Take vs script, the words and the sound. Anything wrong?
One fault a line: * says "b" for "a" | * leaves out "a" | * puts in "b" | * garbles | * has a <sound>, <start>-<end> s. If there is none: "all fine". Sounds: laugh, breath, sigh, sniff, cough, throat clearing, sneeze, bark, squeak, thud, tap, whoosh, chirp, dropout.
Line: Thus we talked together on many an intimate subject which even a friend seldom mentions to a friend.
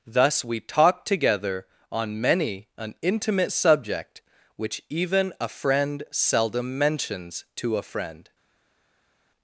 all fine